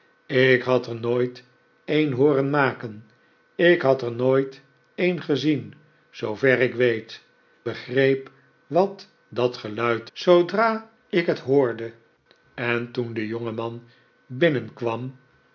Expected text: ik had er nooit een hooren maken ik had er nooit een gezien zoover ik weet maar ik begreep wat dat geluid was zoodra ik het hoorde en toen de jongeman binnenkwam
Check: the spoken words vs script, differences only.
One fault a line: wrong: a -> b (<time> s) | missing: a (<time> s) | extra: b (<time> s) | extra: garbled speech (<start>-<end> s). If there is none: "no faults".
missing: maar ik (7.2 s)
missing: was (10.1 s)